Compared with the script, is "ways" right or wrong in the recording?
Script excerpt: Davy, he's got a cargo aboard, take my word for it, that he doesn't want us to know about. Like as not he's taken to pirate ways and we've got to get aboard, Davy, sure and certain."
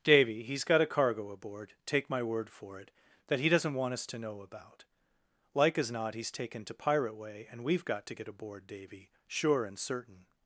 wrong